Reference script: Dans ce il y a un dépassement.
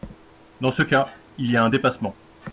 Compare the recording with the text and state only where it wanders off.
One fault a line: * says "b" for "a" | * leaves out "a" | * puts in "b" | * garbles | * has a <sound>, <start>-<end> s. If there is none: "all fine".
* puts in "cas"